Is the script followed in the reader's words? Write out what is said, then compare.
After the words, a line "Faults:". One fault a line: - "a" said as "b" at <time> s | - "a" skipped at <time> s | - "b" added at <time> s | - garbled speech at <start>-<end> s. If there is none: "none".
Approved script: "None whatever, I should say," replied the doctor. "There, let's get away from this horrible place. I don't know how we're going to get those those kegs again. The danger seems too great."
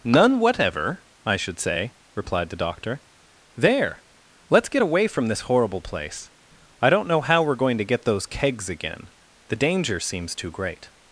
"None whatever, I should say," replied the doctor. "There, let's get away from this horrible place. I don't know how we're going to get those kegs again. The danger seems too great."
Faults:
- "those" skipped at 8.3 s